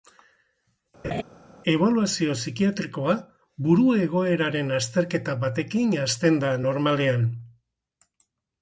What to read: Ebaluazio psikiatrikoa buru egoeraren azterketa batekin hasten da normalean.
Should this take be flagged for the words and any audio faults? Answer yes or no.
yes